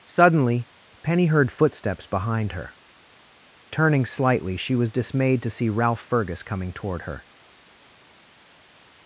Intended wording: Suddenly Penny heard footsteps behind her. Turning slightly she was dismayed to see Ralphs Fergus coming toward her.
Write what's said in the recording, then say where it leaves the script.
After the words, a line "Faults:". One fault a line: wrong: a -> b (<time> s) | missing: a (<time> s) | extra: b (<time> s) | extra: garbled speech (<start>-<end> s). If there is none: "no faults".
Suddenly Penny heard footsteps behind her. Turning slightly she was dismayed to see Ralph Fergus coming toward her.
Faults:
wrong: Ralphs -> Ralph (5.7 s)